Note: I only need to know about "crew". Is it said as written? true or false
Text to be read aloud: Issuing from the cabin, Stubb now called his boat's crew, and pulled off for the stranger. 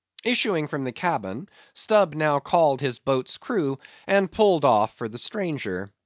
true